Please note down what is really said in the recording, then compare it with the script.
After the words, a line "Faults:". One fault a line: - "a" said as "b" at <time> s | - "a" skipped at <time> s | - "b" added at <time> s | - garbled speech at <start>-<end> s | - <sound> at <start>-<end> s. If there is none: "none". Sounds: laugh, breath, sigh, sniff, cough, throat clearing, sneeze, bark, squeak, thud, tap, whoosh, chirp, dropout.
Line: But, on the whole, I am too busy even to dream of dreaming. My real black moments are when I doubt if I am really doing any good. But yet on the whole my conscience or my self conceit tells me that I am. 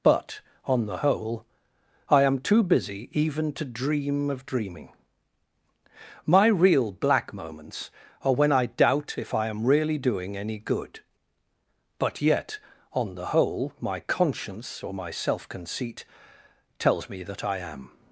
But, on the whole, I am too busy even to dream of dreaming. My real black moments are when I doubt if I am really doing any good. But yet on the whole my conscience or my self conceit tells me that I am.
Faults:
none